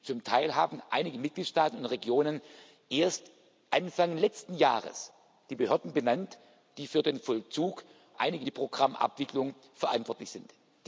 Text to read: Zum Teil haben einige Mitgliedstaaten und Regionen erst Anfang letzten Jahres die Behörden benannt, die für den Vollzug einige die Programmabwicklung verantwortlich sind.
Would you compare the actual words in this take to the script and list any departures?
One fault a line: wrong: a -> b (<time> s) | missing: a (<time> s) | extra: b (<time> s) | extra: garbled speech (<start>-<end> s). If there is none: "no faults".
no faults